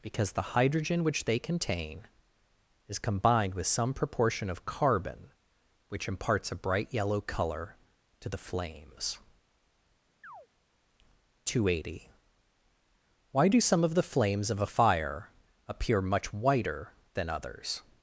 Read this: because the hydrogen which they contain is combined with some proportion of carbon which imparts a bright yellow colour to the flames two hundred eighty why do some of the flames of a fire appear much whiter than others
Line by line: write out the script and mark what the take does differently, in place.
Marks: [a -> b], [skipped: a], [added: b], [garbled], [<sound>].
because the hydrogen which they contain is combined with some proportion of carbon which imparts a bright yellow colour to the flames [chirp] two hundred eighty why do some of the flames of a fire appear much whiter than others